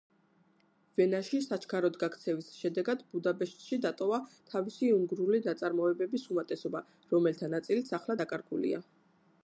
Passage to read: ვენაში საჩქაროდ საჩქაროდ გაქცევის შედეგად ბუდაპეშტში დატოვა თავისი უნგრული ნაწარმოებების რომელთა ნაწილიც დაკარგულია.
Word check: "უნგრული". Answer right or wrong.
right